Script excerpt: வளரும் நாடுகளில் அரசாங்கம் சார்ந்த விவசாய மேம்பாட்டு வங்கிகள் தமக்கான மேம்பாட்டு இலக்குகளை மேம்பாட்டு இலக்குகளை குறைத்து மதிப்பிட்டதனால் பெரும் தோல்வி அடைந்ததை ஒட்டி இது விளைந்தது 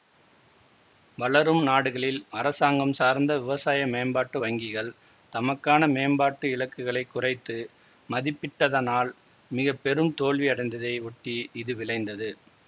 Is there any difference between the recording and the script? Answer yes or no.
yes